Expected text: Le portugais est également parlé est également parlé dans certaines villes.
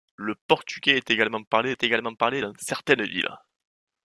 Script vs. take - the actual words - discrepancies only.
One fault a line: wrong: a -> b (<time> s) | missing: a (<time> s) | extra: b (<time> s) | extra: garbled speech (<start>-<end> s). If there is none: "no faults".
no faults